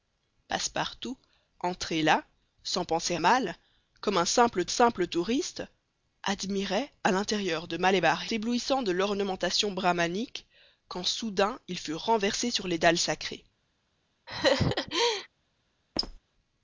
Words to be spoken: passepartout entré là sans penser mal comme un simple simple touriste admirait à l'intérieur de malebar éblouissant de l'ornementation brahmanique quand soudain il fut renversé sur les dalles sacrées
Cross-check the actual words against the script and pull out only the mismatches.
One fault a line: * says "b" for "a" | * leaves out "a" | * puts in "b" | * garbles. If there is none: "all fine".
all fine